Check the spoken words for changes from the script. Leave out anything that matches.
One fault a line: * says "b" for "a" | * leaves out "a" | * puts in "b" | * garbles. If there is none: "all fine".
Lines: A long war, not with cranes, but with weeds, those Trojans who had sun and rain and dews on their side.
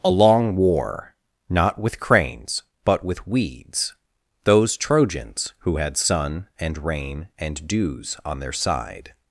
all fine